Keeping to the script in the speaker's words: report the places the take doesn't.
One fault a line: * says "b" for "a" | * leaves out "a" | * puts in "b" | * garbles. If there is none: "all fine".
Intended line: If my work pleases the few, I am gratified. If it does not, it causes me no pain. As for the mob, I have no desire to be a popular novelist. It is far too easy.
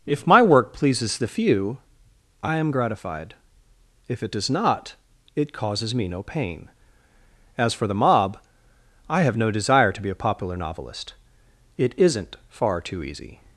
* says "isn't" for "is"